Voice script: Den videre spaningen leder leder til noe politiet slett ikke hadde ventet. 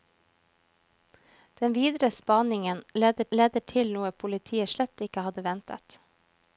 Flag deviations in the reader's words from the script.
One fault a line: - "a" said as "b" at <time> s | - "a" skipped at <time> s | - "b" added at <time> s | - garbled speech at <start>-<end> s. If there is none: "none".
none